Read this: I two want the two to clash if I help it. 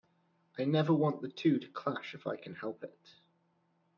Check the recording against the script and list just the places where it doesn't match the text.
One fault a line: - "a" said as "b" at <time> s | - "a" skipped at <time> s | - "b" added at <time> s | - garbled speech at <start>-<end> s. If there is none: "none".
- "two" said as "never" at 0.7 s
- "can" added at 2.4 s